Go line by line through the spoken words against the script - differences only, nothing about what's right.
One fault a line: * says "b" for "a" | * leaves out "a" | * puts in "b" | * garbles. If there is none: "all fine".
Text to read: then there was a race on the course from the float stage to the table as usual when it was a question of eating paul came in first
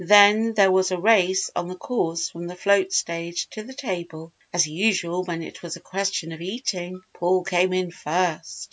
all fine